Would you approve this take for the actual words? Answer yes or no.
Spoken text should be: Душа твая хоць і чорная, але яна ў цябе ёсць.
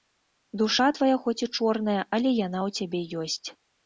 yes